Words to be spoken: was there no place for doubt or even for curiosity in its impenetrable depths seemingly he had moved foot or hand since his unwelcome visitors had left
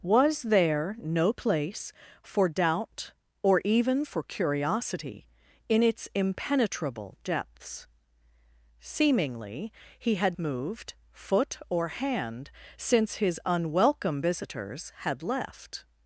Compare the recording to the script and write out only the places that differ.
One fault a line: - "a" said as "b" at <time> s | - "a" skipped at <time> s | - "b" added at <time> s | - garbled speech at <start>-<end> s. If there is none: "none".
none